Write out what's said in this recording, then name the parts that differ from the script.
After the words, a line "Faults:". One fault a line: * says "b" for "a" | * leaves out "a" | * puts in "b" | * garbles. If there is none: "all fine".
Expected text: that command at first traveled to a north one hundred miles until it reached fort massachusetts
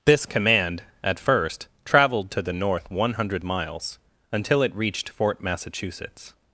this command at first traveled to the north one hundred miles until it reached fort massachusetts
Faults:
* says "this" for "that"
* says "the" for "a"